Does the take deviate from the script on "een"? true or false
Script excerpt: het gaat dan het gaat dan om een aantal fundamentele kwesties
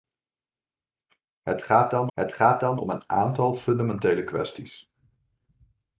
false